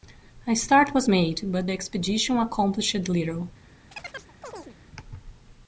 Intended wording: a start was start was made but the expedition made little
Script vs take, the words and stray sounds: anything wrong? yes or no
yes